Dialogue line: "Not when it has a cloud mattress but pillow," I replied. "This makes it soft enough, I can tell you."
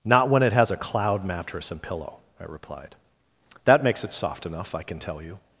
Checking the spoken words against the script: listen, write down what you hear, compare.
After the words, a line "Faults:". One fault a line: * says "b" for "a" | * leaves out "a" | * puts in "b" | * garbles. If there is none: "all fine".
"Not when it has a cloud mattress and pillow," I replied. "That makes it soft enough, I can tell you."
Faults:
* says "and" for "but"
* says "That" for "This"